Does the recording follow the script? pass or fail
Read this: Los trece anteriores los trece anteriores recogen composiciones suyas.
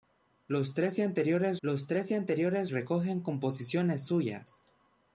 pass